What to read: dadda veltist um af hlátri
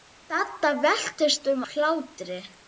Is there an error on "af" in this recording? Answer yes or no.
yes